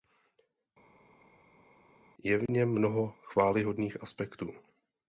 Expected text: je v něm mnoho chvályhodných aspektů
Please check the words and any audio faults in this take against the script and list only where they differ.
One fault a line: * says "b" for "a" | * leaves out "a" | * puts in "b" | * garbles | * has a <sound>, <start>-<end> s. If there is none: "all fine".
all fine